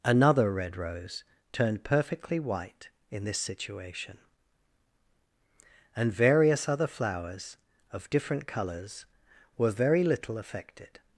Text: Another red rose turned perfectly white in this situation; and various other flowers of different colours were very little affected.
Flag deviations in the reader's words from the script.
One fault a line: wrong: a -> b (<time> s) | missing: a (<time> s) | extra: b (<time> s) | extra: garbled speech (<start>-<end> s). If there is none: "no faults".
no faults